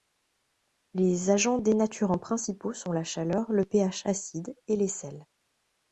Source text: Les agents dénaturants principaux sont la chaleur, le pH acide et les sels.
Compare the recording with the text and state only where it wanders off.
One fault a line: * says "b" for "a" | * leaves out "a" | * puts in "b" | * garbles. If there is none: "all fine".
all fine